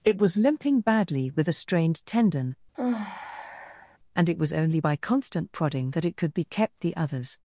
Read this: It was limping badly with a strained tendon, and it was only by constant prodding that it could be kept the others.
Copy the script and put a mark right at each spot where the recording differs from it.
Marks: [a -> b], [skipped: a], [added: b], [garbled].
It was limping badly with a strained tendon, and it was only by constant prodding that it could be kept the others.